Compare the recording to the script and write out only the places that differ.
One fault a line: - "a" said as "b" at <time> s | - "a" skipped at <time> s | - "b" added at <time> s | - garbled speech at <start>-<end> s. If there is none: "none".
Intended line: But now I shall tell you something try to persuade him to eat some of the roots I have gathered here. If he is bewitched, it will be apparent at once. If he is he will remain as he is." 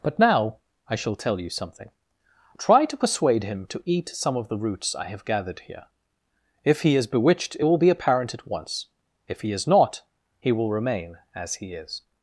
- "not" added at 9.6 s